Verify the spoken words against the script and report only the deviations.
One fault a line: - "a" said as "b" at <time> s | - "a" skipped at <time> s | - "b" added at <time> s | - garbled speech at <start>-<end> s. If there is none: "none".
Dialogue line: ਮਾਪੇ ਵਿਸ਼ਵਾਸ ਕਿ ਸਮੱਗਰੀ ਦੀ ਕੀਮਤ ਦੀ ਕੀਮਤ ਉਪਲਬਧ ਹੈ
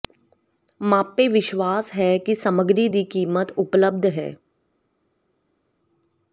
- "ਹੈ" added at 1.9 s
- "ਦੀ ਕੀਮਤ" skipped at 3.5 s